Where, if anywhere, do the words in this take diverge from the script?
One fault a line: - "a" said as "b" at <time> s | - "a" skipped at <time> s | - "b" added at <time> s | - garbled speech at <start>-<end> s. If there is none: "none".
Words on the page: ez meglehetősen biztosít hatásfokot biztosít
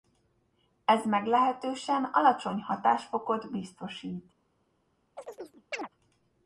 - "biztosít" said as "alacsony" at 2.0 s